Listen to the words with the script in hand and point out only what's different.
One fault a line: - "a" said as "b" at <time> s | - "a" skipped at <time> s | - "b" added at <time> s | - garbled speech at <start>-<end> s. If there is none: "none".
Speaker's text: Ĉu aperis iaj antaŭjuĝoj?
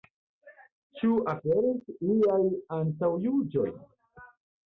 none